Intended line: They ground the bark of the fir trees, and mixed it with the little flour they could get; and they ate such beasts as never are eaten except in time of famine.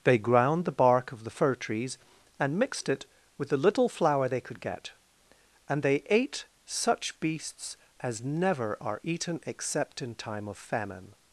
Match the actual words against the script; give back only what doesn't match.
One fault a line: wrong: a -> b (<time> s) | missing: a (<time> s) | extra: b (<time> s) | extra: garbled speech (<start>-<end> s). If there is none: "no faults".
no faults